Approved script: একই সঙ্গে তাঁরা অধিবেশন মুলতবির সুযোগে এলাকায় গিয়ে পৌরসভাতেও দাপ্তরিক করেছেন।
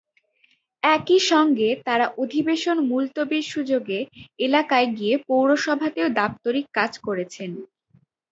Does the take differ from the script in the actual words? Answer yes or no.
yes